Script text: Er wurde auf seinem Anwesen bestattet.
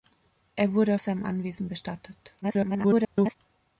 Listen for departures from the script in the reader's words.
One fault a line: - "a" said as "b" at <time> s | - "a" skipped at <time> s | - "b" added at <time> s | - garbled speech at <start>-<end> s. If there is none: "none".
- "auf" skipped at 0.9 s
- garbled speech at 2.4-3.4 s